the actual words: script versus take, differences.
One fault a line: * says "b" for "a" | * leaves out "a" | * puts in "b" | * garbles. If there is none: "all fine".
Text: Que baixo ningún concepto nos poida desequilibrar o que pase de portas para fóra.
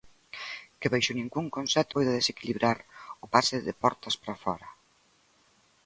* leaves out "nos"
* leaves out "que"